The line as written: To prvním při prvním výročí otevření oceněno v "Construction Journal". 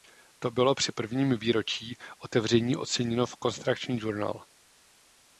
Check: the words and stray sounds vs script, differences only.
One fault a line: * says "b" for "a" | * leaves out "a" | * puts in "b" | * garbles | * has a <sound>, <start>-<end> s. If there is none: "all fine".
* says "bylo" for "prvním"